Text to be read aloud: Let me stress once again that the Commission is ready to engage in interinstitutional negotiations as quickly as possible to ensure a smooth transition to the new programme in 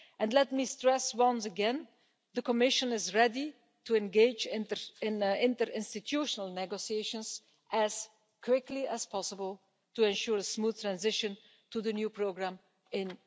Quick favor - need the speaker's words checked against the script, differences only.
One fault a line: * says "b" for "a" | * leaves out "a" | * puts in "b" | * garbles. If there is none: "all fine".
all fine